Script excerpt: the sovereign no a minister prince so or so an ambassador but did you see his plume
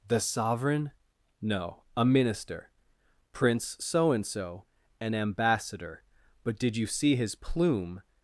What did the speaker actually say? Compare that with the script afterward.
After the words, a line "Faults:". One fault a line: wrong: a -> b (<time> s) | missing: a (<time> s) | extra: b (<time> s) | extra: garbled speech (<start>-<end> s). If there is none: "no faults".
the sovereign no a minister prince so and so an ambassador but did you see his plume
Faults:
wrong: or -> and (4.1 s)